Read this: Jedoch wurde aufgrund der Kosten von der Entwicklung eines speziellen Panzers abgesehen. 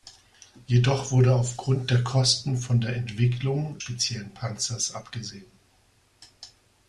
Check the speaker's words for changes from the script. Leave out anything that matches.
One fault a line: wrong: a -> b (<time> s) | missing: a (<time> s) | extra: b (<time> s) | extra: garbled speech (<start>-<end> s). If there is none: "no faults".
missing: eines (3.8 s)